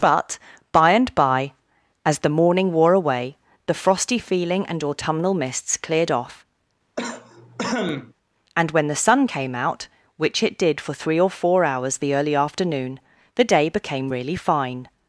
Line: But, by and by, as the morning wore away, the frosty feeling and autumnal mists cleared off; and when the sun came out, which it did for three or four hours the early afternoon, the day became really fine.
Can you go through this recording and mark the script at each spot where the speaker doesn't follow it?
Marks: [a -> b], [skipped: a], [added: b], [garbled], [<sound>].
But, by and by, as the morning wore away, the frosty feeling and autumnal mists cleared off; [cough] and when the sun came out, which it did for three or four hours the early afternoon, the day became really fine.